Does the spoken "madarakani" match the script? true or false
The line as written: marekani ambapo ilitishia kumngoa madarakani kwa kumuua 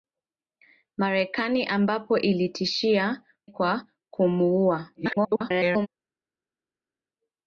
false